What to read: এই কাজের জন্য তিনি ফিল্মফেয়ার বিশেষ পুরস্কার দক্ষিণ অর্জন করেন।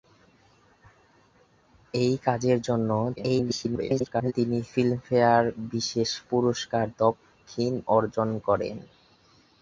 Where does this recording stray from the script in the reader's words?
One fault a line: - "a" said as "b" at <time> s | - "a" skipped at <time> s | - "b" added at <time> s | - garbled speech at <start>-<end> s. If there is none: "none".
- garbled speech at 3.2-4.3 s